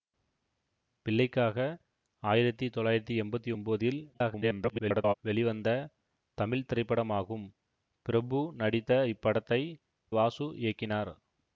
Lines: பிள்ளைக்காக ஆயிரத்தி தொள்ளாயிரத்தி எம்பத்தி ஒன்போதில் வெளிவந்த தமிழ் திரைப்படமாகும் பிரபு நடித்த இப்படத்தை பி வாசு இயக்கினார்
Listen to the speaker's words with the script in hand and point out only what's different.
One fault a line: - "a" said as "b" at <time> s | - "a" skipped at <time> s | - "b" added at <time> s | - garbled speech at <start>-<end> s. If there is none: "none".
- garbled speech at 4.1-5.1 s
- "பி" skipped at 9.6 s